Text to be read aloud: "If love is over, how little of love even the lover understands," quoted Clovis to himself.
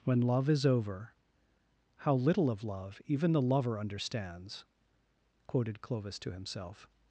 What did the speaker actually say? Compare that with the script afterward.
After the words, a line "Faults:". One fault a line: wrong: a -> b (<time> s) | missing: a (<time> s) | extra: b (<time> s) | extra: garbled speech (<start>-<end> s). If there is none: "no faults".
"When love is over, how little of love even the lover understands," quoted Clovis to himself.
Faults:
wrong: If -> When (0.0 s)